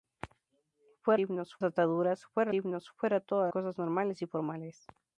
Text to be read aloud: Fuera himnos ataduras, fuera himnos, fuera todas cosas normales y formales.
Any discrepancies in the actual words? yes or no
no